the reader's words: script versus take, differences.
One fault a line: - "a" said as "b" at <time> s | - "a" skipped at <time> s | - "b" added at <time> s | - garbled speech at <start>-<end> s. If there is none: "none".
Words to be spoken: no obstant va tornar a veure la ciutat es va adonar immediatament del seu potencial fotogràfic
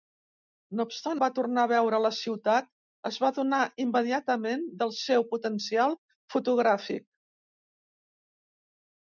none